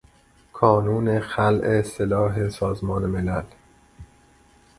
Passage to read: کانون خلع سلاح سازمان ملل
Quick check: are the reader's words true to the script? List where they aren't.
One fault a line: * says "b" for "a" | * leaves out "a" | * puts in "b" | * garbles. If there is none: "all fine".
all fine